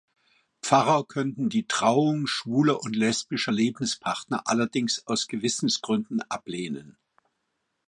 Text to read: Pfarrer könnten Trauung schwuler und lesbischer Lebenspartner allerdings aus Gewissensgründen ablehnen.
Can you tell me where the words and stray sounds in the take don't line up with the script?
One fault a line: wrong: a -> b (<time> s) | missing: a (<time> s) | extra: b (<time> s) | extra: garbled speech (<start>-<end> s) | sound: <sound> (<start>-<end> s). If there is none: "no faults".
extra: die (1.5 s)